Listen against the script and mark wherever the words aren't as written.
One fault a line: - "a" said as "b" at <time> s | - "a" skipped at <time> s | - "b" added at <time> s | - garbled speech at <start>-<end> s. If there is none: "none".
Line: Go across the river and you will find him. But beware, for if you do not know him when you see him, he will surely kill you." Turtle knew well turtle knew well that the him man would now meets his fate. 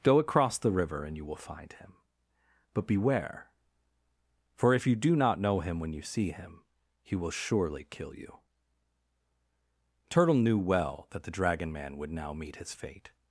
- "turtle knew well" skipped at 11.1 s
- "him" said as "dragon" at 11.3 s
- "meets" said as "meet" at 12.3 s